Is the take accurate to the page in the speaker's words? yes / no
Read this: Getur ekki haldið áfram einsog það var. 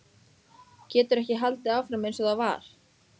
yes